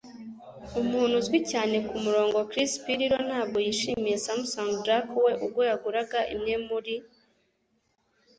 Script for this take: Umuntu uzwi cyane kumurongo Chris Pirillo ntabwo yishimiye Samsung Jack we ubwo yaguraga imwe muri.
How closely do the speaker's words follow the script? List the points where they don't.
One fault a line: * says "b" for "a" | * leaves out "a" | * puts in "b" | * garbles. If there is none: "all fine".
all fine